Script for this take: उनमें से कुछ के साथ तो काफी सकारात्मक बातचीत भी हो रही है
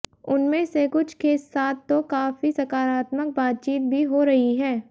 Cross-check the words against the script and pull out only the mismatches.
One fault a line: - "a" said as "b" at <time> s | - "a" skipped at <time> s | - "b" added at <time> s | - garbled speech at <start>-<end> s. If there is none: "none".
none